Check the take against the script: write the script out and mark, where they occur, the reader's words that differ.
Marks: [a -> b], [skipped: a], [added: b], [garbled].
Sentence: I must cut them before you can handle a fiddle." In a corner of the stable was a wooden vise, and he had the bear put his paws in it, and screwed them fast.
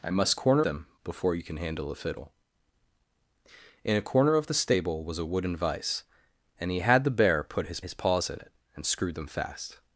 I must [cut -> corner] them before you can handle a fiddle." In a corner of the stable was a wooden vise, and he had the bear put his [added: his] paws in it, and screwed them fast.